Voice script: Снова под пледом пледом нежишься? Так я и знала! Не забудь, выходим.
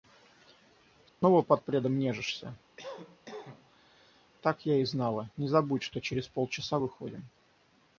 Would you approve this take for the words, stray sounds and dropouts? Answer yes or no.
no